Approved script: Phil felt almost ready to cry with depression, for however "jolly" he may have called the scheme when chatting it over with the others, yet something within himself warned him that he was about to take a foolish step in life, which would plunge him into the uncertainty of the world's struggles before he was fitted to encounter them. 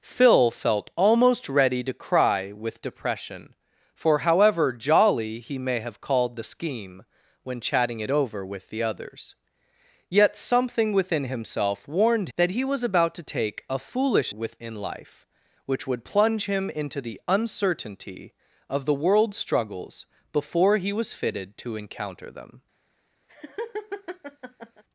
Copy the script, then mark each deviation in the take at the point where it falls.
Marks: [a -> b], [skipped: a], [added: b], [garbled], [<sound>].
Phil felt almost ready to cry with depression, for however "jolly" he may have called the scheme when chatting it over with the others, yet something within himself warned [skipped: him] that he was about to take a foolish [step -> with] in life, which would plunge him into the uncertainty of the world's struggles before he was fitted to encounter them. [laugh]